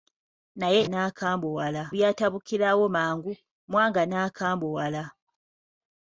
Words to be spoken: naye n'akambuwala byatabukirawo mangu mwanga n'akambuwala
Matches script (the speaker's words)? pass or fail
pass